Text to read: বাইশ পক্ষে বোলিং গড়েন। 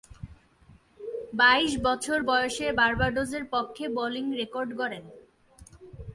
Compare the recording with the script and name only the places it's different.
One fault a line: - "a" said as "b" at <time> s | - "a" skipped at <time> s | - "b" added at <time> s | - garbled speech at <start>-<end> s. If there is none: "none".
- "বছর বয়সে বার্বাডোসের" added at 1.9 s
- "রেকর্ড" added at 4.4 s